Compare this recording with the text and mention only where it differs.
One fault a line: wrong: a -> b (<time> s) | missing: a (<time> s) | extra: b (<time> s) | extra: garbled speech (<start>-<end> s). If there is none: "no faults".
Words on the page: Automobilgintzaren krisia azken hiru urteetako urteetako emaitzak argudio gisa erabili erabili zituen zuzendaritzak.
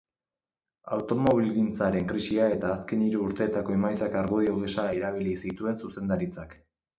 extra: eta (2.6 s)
missing: urteetako (3.8 s)
missing: erabili (5.4 s)